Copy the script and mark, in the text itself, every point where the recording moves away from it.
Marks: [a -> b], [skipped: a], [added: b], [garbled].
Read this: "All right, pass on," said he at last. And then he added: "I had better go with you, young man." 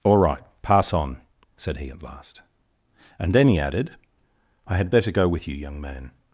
"All right, pass on," said he at last. And then he added: "I had better go with you, young man."